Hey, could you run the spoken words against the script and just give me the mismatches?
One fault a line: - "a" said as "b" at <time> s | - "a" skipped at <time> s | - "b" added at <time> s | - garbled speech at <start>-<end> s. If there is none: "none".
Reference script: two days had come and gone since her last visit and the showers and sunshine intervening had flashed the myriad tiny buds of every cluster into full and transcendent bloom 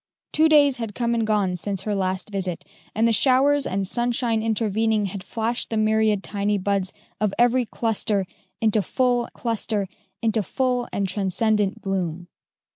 - "cluster into full" added at 9.3 s